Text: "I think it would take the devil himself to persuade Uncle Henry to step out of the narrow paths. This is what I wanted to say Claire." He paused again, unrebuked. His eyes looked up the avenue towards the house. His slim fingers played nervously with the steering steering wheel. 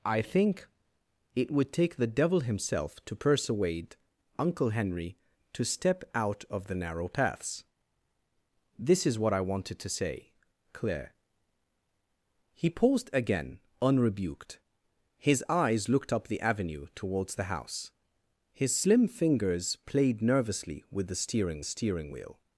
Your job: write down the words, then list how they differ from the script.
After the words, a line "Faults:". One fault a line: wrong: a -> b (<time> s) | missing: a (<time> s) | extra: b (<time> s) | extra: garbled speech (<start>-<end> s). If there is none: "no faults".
"I think it would take the devil himself to persuade Uncle Henry to step out of the narrow paths. This is what I wanted to say Claire." He paused again, unrebuked. His eyes looked up the avenue towards the house. His slim fingers played nervously with the steering steering wheel.
Faults:
no faults